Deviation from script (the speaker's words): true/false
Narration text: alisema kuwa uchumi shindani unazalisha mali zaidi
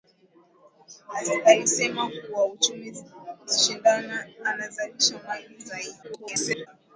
true